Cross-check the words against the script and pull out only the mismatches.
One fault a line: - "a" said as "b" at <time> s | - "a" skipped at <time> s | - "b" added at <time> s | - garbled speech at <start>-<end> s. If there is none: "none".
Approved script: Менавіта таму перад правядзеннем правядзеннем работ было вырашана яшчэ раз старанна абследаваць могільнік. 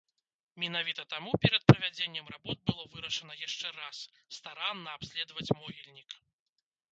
- "правядзеннем" skipped at 2.3 s